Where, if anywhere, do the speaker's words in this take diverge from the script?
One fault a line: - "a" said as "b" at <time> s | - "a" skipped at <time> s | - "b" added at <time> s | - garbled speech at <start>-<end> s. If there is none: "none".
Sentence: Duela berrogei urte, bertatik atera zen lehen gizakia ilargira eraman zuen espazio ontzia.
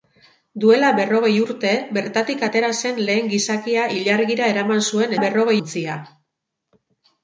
- "espazio" said as "berrogei" at 5.2 s